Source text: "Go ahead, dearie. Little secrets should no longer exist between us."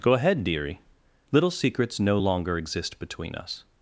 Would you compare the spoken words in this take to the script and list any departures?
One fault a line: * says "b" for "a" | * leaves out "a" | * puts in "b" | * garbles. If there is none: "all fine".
* leaves out "should"